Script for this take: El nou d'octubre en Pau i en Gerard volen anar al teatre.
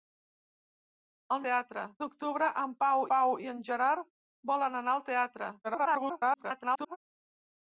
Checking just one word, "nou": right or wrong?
wrong